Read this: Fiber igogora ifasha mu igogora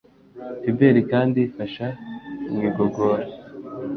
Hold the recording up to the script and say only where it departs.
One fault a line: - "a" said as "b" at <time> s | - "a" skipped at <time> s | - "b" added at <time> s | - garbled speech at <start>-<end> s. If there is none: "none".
- "igogora" said as "kandi" at 1.1 s